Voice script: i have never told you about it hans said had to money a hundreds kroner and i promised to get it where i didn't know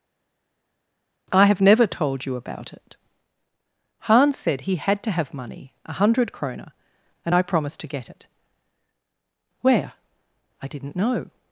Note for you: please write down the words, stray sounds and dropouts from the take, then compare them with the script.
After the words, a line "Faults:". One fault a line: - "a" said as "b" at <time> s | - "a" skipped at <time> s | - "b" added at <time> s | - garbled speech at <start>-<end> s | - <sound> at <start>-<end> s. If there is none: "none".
i have never told you about it hans said he had to have money a hundred kroner and i promised to get it where i didn't know
Faults:
- "he" added at 4.6 s
- "have" added at 5.1 s
- "hundreds" said as "hundred" at 5.9 s